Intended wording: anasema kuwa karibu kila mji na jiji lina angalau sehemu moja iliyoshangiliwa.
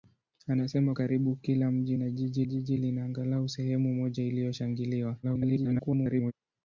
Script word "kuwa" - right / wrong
wrong